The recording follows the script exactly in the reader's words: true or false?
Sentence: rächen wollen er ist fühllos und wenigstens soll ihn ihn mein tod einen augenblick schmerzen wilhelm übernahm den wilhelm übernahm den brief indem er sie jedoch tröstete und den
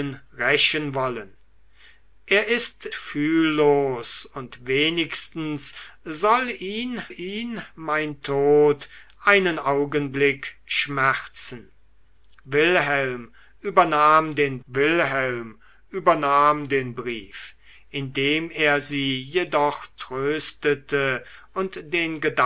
true